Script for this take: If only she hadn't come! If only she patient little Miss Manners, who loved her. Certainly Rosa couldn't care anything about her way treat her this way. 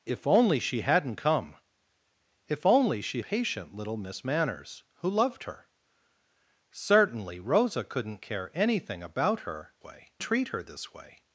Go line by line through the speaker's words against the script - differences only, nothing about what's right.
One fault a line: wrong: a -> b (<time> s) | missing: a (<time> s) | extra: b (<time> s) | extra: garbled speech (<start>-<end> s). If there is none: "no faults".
no faults